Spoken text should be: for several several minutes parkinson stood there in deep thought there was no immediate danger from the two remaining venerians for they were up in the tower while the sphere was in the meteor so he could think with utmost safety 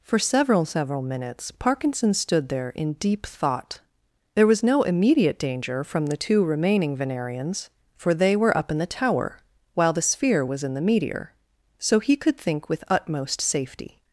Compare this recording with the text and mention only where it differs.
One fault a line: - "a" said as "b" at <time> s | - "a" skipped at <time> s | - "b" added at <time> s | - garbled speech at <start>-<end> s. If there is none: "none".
none